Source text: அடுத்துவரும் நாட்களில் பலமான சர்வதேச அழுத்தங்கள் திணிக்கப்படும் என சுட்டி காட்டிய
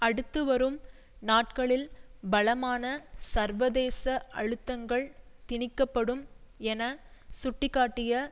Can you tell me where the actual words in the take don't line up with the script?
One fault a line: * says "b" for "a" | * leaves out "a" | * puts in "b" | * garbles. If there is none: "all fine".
all fine